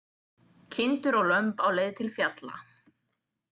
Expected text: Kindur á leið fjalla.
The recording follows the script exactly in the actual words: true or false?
false